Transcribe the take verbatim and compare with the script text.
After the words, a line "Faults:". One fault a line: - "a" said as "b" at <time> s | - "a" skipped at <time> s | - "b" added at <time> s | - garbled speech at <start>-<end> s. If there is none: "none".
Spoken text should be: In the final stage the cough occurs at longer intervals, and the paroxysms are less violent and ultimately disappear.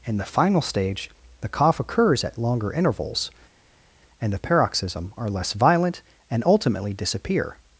In the final stage the cough occurs at longer intervals, and the paroxysm are less violent and ultimately disappear.
Faults:
- "paroxysms" said as "paroxysm" at 4.4 s